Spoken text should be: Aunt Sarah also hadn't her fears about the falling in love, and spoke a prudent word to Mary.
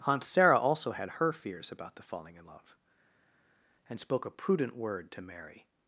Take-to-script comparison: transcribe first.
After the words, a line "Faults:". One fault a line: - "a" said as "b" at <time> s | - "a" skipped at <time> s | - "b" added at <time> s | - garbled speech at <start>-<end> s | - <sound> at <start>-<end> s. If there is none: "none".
Aunt Sarah also had her fears about the falling in love, and spoke a prudent word to Mary.
Faults:
- "hadn't" said as "had" at 0.9 s